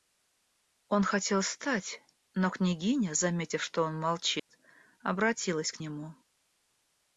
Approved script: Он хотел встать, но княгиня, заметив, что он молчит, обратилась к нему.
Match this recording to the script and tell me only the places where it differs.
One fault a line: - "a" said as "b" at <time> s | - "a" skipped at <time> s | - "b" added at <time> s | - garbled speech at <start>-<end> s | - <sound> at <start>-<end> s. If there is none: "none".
- dropout at 4.4-4.5 s